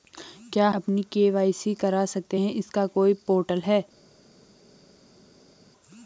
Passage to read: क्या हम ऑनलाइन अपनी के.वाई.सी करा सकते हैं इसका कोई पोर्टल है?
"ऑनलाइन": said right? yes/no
no